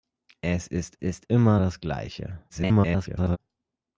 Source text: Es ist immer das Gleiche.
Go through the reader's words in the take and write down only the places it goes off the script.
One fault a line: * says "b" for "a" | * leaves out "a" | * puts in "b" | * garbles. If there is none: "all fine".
* puts in "ist"
* garbles